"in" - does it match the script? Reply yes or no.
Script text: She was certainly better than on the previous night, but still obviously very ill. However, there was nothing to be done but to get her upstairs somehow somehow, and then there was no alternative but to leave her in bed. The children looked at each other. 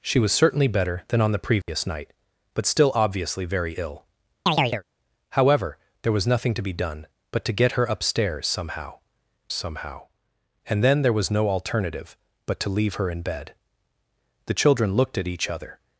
yes